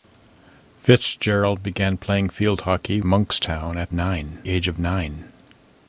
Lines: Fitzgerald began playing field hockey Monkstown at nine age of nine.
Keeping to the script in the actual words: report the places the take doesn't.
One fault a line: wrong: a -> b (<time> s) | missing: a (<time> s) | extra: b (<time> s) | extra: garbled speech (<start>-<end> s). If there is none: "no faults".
no faults